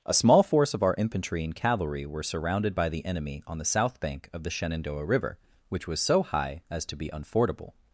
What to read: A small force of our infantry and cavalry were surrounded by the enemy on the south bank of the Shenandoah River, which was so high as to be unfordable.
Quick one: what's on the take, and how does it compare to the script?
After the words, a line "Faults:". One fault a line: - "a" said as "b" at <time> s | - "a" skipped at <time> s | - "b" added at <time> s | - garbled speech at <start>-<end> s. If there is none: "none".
A small force of our infantry and cavalry were surrounded by the enemy on the south bank of the Shenandoah River, which was so high as to be unfordable.
Faults:
none